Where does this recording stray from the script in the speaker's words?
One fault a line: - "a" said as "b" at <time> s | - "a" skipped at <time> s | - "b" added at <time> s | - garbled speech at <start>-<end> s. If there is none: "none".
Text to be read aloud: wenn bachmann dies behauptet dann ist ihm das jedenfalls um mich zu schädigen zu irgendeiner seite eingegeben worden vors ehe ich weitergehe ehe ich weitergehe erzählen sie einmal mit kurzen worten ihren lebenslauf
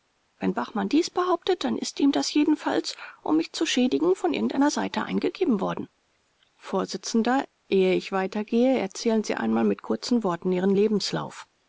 - "zu" said as "von" at 4.2 s
- "ehe ich weitergehe" skipped at 8.8 s